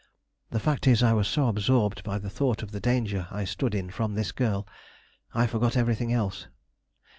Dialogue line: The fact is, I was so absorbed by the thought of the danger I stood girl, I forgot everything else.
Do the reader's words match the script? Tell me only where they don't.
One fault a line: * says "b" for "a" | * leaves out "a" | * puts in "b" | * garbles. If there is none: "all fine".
* puts in "in from this"